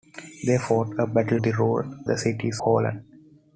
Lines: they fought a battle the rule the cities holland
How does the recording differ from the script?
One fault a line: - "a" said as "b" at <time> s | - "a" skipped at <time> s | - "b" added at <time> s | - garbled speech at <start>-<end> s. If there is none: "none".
none